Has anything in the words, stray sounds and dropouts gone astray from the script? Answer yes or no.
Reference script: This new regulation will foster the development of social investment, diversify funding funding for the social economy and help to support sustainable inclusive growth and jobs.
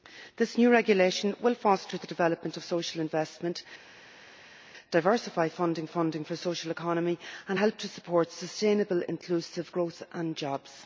no